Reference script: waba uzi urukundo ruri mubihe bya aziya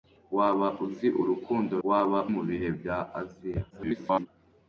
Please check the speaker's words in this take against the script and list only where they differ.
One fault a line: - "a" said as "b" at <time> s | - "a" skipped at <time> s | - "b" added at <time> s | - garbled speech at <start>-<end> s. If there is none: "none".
- "ruri" said as "waba" at 1.9 s
- garbled speech at 3.7-4.3 s